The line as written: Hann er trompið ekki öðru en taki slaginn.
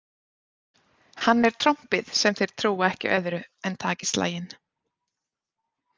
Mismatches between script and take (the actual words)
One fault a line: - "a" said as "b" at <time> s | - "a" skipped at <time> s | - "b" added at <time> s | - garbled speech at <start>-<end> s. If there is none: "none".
- "sem þeir trúa" added at 2.2 s